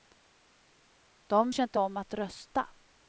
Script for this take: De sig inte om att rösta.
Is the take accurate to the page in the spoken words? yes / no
yes